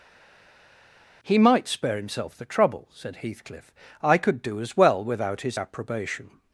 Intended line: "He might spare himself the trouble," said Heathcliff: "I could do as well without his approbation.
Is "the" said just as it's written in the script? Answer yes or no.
yes